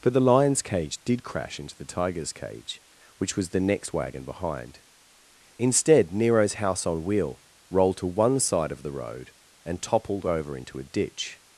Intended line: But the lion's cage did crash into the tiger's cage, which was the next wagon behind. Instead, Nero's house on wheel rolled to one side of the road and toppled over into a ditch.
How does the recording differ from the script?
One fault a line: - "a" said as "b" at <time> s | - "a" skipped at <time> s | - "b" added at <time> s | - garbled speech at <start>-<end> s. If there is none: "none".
none